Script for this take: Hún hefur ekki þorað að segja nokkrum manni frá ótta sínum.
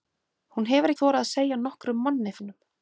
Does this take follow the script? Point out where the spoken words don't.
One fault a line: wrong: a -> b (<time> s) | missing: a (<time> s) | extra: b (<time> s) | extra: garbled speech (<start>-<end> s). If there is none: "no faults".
missing: ekki (0.9 s)
missing: frá ótta (2.3 s)